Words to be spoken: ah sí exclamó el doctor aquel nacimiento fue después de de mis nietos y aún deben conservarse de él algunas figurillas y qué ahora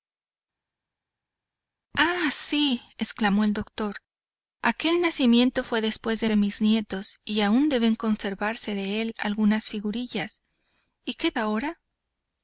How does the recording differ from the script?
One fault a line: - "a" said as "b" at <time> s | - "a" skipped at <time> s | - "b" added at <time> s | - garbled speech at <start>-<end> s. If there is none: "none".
none